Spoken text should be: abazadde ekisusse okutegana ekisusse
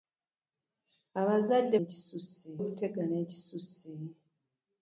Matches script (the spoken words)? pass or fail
pass